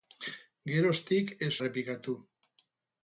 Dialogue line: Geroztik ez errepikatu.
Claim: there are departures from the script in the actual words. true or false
false